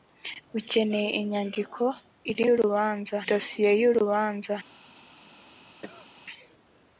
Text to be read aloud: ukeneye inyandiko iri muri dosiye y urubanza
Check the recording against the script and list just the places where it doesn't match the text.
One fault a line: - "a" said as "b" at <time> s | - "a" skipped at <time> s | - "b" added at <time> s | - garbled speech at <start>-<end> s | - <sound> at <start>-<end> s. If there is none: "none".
- "muri" said as "urubanza" at 2.5 s
- cough at 5.8-6.1 s